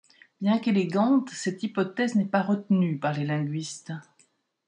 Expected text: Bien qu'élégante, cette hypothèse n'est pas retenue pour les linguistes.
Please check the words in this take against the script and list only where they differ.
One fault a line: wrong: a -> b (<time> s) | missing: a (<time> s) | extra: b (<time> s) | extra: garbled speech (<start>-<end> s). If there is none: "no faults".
wrong: pour -> par (3.0 s)